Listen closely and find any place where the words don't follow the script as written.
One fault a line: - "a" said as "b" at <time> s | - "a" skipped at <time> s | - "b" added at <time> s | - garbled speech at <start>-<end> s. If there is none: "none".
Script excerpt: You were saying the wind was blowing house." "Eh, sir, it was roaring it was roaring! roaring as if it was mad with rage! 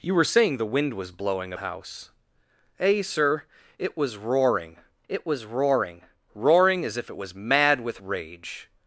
none